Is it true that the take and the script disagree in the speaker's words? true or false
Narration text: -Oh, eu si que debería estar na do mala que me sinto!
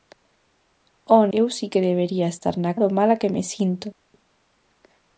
false